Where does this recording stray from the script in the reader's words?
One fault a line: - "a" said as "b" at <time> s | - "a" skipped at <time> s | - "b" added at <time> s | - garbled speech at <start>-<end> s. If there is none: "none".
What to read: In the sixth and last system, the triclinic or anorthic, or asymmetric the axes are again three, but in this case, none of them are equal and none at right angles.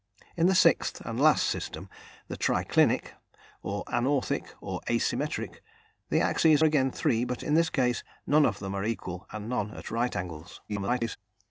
- "are" skipped at 6.6 s
- garbled speech at 10.7-11.2 s